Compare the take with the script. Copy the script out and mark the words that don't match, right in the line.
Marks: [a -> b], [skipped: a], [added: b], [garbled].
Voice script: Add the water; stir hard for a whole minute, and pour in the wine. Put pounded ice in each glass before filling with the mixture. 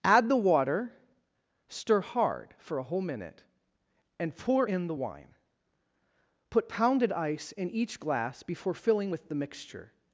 Add the water; stir hard for a whole minute, and pour in the wine. Put pounded ice in each glass before filling with the mixture.